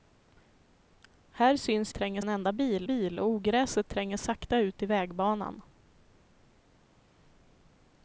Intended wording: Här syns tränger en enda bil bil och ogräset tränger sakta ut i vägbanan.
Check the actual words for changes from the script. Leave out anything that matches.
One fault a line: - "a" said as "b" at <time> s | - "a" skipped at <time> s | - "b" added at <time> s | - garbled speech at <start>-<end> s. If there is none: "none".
none